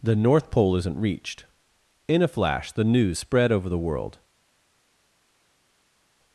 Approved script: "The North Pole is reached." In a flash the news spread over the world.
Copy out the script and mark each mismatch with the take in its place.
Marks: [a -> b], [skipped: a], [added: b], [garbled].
"The North Pole [is -> isn't] reached." In a flash the news spread over the world.